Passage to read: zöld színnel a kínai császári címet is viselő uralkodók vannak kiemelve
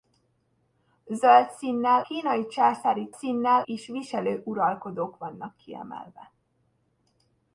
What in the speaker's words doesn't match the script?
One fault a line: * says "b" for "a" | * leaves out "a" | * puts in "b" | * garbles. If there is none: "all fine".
* leaves out "a"
* says "színnel" for "címet"